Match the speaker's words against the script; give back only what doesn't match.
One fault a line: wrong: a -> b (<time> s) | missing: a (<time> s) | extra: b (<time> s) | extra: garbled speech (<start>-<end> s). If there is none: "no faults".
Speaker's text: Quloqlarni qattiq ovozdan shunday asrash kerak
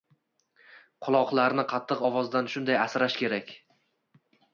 no faults